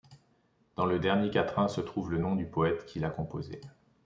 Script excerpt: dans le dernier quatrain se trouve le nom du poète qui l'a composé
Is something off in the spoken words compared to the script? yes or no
no